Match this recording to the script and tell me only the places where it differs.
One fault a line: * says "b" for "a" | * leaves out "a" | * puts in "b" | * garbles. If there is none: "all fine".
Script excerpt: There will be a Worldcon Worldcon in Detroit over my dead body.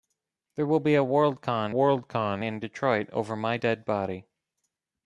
all fine